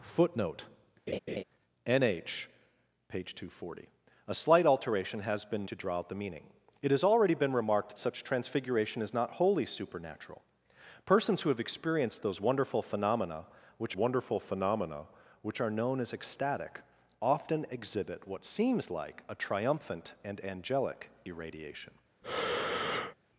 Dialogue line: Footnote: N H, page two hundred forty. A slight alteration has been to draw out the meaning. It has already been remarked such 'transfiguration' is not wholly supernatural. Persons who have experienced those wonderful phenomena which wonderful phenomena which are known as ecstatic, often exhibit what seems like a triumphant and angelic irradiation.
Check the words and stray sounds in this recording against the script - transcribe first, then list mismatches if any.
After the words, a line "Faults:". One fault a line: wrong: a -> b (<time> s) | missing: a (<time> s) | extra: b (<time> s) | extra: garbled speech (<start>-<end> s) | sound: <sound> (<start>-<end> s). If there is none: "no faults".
Footnote: N H, page two hundred forty. A slight alteration has been to draw out the meaning. It has already been remarked such 'transfiguration' is not wholly supernatural. Persons who have experienced those wonderful phenomena which wonderful phenomena which are known as ecstatic, often exhibit what seems like a triumphant and angelic irradiation.
Faults:
sound: laugh (1.1-1.4 s)
sound: breath (22.2-23.1 s)